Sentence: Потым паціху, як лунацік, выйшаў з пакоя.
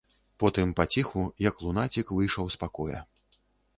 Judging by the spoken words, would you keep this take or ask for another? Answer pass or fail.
pass